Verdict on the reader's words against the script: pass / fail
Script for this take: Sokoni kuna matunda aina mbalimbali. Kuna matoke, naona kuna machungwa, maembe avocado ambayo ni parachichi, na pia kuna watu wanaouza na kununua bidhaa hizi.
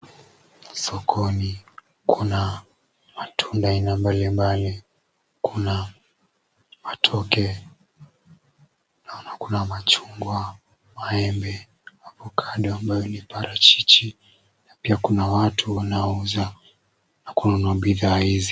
pass